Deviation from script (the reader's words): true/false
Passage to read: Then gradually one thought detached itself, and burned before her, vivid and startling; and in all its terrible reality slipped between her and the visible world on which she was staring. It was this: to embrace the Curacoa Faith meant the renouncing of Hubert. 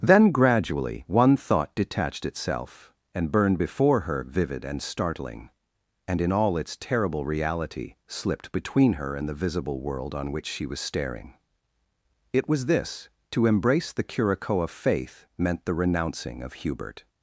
false